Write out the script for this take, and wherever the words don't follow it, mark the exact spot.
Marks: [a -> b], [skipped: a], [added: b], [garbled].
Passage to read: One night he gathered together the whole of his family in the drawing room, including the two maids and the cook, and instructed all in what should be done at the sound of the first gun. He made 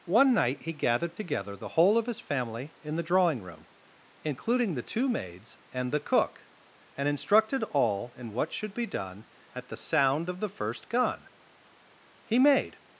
One night he gathered together the whole of his family in the drawing room, including the two maids and the cook, and instructed all in what should be done at the sound of the first gun. He made